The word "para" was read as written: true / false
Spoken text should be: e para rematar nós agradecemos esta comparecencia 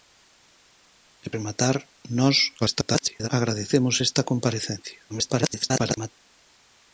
false